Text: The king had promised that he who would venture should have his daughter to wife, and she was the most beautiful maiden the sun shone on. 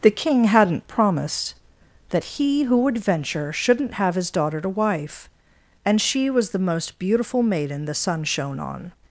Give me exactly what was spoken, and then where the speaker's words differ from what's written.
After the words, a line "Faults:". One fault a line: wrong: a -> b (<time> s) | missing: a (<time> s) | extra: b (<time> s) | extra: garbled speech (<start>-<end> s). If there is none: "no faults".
The king hadn't promised that he who would venture shouldn't have his daughter to wife, and she was the most beautiful maiden the sun shone on.
Faults:
wrong: had -> hadn't (0.5 s)
wrong: should -> shouldn't (3.5 s)